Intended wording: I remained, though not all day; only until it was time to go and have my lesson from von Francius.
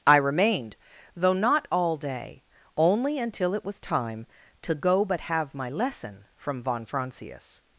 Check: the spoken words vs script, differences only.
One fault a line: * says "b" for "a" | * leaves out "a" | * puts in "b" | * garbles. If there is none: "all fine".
* says "but" for "and"